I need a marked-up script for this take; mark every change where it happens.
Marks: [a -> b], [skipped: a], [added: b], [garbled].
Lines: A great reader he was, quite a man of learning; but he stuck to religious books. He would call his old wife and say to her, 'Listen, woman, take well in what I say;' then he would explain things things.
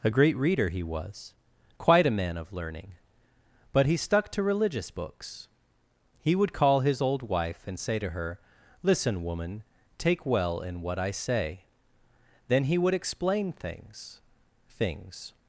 A great reader he was, quite a man of learning; but he stuck to religious books. He would call his old wife and say to her, 'Listen, woman, take well in what I say;' then he would explain things things.